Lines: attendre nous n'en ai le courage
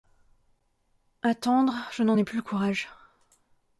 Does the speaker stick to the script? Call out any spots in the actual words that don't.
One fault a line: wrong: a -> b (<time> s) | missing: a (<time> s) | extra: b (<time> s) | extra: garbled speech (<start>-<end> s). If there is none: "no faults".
wrong: nous -> je (1.9 s)
extra: plus (2.2 s)